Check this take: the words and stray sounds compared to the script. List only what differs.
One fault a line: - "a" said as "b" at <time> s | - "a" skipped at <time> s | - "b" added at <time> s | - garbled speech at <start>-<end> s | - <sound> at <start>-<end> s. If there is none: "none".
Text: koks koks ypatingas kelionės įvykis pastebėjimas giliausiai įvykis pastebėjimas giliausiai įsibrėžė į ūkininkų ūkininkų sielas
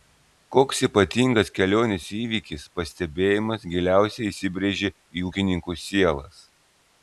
- "koks" skipped at 0.8 s
- "įvykis pastebėjimas giliausiai" skipped at 4.3 s
- "ūkininkų" skipped at 5.8 s